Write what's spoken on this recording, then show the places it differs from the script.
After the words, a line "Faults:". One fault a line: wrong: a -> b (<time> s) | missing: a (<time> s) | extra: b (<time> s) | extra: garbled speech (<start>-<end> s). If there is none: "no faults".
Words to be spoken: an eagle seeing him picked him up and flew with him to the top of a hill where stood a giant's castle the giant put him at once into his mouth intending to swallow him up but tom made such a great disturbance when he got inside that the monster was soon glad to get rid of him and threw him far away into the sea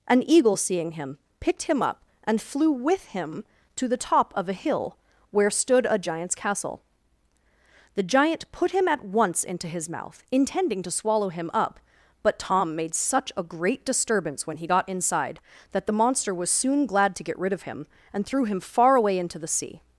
an eagle seeing him picked him up and flew with him to the top of a hill where stood a giant's castle the giant put him at once into his mouth intending to swallow him up but tom made such a great disturbance when he got inside that the monster was soon glad to get rid of him and threw him far away into the sea
Faults:
no faults